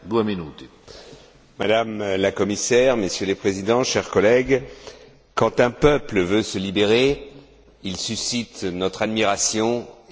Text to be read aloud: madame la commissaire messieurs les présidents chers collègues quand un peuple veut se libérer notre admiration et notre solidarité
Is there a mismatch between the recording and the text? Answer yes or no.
yes